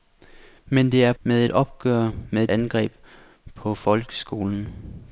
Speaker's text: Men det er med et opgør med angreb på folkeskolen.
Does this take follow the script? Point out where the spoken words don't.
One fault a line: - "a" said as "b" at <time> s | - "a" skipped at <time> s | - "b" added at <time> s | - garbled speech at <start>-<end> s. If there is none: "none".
none